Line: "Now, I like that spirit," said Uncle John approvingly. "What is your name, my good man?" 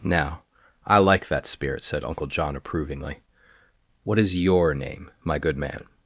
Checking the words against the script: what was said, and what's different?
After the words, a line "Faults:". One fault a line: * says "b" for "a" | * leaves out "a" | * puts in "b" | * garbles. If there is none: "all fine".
"Now, I like that spirit," said Uncle John approvingly. "What is your name, my good man?"
Faults:
all fine